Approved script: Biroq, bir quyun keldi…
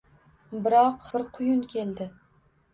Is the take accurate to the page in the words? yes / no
yes